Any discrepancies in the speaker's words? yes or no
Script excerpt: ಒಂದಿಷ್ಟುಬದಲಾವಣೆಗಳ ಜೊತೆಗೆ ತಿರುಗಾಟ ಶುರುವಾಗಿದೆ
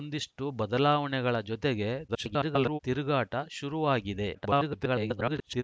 yes